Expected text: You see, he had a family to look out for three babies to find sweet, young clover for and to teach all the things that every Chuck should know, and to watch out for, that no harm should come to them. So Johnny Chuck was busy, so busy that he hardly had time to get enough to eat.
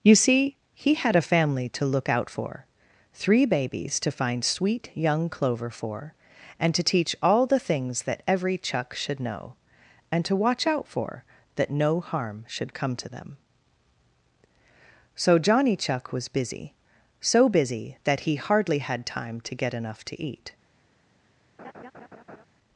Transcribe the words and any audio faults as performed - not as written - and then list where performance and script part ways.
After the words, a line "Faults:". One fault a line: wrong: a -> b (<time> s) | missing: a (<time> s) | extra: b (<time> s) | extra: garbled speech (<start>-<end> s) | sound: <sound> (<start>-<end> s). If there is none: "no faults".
You see, he had a family to look out for three babies to find sweet, young clover for and to teach all the things that every Chuck should know, and to watch out for, that no harm should come to them. So Johnny Chuck was busy, so busy that he hardly had time to get enough to eat.
Faults:
sound: laugh (21.6-22.5 s)